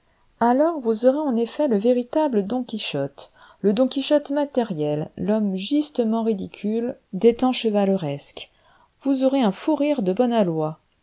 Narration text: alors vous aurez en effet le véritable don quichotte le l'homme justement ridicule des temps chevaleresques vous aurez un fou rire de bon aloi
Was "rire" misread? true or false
false